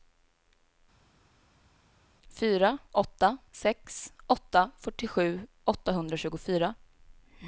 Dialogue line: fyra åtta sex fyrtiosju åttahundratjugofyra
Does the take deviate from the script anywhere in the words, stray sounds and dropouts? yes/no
yes